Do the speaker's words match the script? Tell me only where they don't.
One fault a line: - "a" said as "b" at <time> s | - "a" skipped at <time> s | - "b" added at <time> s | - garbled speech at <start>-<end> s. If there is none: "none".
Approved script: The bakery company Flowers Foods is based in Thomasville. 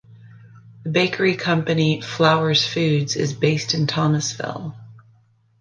none